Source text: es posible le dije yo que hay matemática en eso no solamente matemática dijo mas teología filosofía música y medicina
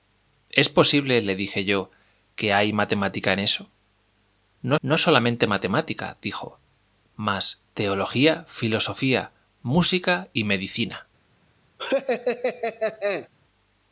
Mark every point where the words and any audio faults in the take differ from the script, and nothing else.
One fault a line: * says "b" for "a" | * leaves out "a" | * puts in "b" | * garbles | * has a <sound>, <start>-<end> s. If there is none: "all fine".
* puts in "no"
* has a laugh, 11.8-13.3 s